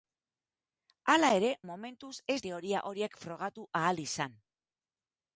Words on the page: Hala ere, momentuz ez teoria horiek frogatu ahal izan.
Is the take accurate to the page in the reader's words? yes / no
yes